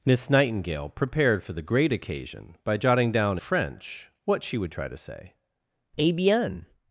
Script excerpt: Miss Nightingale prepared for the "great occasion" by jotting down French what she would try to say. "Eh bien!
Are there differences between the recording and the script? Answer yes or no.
no